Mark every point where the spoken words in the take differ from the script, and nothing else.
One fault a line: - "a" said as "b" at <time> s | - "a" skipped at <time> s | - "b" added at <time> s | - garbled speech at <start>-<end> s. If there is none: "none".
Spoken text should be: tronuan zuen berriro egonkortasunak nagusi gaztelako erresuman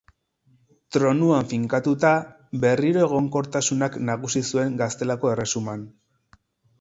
- "zuen" said as "finkatuta" at 1.5 s
- "zuen" added at 4.5 s